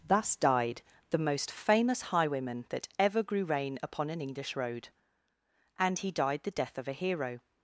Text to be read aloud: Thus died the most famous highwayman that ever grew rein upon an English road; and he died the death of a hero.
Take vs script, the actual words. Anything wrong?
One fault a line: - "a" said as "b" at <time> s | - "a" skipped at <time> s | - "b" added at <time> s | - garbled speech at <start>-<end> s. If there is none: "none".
none